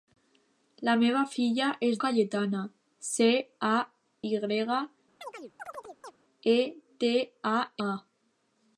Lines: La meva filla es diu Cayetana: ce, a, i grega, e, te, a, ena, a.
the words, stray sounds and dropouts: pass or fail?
fail